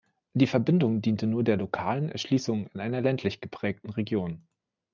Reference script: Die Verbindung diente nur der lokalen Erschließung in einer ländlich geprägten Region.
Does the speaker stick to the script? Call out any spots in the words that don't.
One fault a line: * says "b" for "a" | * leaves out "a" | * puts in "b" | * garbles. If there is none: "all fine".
all fine